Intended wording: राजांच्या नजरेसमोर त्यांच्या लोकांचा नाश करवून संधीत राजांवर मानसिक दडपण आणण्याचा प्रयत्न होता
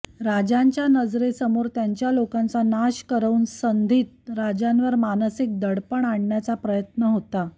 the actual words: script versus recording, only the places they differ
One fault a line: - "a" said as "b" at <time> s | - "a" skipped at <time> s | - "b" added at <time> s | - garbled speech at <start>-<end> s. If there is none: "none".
none